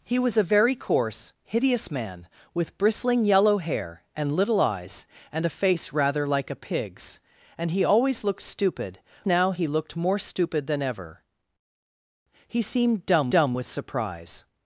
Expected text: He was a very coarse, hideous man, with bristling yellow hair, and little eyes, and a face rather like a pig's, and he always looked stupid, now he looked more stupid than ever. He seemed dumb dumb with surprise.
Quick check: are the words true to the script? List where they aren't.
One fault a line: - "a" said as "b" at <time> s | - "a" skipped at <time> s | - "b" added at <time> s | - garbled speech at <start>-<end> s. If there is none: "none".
none